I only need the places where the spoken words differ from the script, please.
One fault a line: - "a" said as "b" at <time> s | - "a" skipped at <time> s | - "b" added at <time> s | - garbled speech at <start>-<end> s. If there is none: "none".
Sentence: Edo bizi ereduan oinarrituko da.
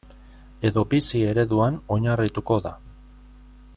none